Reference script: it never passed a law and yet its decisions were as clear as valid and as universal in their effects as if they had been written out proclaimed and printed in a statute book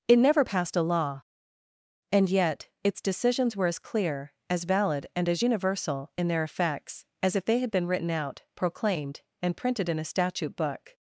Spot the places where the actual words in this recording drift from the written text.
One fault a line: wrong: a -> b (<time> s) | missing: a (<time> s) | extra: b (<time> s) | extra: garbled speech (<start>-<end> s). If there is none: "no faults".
no faults